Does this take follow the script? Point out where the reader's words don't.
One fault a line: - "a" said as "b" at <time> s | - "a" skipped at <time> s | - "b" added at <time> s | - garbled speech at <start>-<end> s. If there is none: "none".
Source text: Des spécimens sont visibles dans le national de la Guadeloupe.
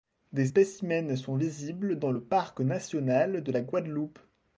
- "parc" added at 2.2 s